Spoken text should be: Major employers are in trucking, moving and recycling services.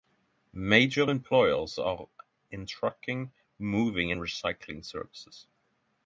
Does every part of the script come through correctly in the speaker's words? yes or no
yes